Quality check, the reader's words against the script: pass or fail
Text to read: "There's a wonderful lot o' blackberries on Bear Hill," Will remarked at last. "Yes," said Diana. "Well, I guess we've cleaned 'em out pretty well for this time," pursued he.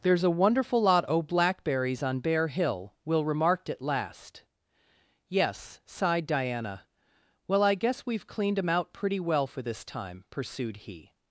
fail